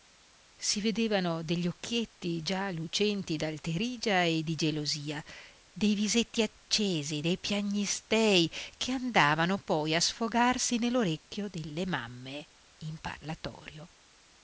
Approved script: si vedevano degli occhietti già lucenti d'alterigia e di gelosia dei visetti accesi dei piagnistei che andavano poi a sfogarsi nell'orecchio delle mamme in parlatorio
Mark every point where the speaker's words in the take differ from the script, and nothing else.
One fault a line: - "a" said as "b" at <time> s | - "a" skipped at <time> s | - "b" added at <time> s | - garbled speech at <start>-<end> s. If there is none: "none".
none